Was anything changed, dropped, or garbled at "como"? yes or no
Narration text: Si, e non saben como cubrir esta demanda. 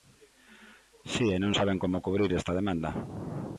no